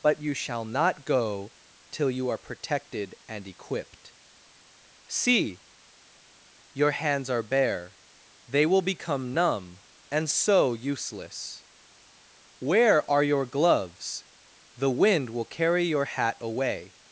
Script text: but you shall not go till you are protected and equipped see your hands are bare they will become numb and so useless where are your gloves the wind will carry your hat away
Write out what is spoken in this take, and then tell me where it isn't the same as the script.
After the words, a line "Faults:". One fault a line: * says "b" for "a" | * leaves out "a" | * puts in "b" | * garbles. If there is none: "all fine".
but you shall not go till you are protected and equipped see your hands are bare they will become numb and so useless where are your gloves the wind will carry your hat away
Faults:
all fine